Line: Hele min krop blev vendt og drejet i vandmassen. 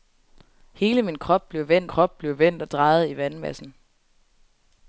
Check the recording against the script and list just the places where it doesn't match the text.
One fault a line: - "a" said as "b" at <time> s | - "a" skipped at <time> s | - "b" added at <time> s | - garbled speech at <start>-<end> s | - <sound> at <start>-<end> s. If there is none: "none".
- "krop blev vendt" added at 1.8 s